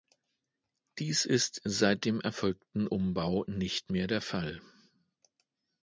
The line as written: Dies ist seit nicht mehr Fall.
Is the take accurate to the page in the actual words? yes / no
no